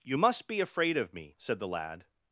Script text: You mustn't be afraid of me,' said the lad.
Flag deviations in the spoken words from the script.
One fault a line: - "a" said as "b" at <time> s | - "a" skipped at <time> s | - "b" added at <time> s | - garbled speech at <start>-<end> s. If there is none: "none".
- "mustn't" said as "must" at 0.1 s